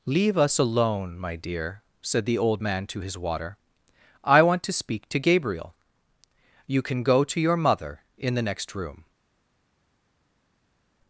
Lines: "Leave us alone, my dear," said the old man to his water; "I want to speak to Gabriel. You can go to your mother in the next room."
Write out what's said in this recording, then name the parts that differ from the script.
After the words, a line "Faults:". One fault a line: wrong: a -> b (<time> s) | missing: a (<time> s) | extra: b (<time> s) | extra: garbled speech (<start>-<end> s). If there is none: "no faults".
"Leave us alone, my dear," said the old man to his water; "I want to speak to Gabriel. You can go to your mother in the next room."
Faults:
no faults